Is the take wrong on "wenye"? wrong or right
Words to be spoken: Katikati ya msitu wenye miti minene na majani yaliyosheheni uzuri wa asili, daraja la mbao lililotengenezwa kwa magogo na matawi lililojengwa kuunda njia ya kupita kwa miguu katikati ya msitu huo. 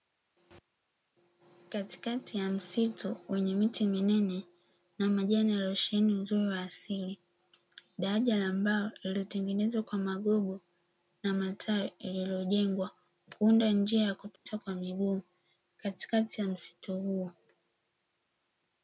right